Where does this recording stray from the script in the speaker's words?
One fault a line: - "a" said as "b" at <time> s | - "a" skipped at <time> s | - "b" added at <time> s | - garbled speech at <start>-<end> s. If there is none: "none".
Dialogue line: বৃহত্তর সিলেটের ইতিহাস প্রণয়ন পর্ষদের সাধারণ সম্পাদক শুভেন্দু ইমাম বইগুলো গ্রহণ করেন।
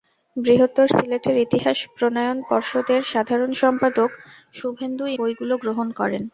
- "ইমাম" skipped at 5.0 s